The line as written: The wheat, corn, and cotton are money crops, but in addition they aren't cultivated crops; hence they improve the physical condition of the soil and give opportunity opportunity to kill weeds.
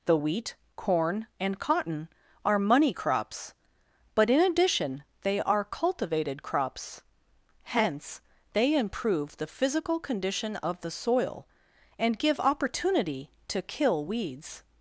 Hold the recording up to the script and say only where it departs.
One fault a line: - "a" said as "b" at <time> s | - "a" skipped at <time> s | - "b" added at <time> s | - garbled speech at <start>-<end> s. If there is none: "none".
- "aren't" said as "are" at 5.4 s
- "opportunity" skipped at 13.3 s